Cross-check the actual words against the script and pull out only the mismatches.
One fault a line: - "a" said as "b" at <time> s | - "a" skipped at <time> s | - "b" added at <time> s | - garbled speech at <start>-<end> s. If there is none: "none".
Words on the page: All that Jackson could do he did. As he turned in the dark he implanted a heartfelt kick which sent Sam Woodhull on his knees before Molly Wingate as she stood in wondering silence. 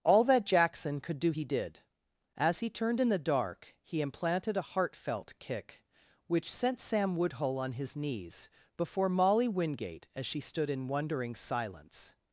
none